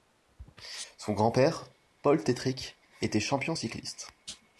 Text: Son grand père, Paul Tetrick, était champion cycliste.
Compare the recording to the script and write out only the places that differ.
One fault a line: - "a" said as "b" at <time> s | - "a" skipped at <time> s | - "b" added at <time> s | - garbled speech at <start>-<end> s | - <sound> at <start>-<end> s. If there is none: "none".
none